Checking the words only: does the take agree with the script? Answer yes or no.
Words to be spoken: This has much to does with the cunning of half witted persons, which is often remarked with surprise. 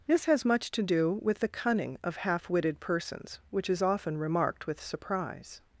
no